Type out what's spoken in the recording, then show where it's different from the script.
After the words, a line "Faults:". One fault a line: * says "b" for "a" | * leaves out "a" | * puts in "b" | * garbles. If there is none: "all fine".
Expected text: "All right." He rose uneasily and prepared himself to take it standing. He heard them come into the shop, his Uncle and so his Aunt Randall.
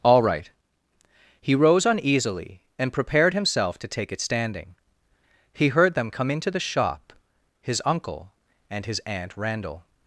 "All right." He rose uneasily and prepared himself to take it standing. He heard them come into the shop, his Uncle and his Aunt Randall.
Faults:
* leaves out "so"